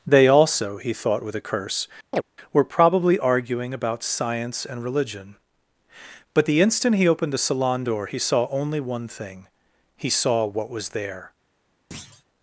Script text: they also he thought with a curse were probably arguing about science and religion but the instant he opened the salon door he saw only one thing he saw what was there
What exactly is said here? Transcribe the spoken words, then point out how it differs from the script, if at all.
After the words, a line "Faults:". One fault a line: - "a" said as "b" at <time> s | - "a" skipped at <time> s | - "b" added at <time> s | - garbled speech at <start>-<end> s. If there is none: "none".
they also he thought with a curse were probably arguing about science and religion but the instant he opened the salon door he saw only one thing he saw what was there
Faults:
none